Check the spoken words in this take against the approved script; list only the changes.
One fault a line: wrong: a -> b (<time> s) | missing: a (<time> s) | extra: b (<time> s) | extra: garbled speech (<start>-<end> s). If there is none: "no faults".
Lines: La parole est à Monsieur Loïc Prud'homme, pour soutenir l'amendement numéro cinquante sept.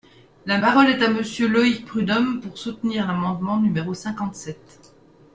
no faults